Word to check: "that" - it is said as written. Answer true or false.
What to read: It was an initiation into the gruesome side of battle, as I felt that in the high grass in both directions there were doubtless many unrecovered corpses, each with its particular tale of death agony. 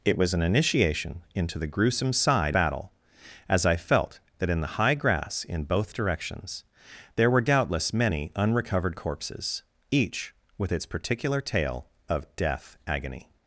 true